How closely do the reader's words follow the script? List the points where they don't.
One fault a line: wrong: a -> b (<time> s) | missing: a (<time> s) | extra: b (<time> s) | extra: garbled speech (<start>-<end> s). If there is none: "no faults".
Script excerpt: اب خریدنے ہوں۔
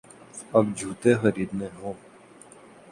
extra: جوتے (0.8 s)